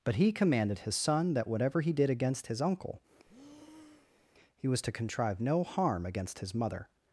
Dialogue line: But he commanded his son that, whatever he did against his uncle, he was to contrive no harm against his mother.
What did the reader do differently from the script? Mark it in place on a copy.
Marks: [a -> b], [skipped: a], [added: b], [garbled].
But he commanded his son that, whatever he did against his uncle, he was to contrive no harm against his mother.